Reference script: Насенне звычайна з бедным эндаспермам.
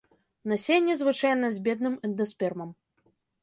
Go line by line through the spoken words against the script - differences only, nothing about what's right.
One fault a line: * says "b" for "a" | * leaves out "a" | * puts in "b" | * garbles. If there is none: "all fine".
all fine